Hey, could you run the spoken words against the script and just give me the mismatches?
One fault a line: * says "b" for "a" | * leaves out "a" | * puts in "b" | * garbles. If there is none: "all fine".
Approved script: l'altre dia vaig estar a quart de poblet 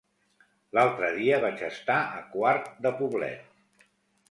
all fine